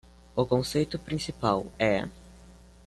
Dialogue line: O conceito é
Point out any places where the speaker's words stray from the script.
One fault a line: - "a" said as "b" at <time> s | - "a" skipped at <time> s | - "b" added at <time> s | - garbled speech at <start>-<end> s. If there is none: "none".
- "principal" added at 1.0 s